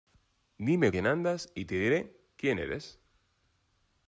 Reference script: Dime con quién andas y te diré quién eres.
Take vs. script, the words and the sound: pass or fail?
fail